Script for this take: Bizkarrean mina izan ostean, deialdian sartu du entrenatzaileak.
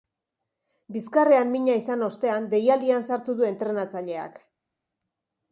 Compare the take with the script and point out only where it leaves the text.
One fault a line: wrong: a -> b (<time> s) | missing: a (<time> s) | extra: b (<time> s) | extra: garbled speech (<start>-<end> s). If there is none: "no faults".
no faults